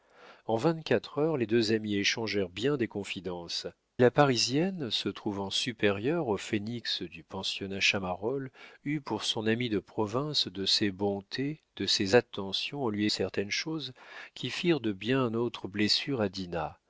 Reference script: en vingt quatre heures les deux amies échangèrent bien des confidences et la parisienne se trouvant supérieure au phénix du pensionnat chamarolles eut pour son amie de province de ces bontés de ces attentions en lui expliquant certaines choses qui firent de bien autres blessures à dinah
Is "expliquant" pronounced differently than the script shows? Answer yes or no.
yes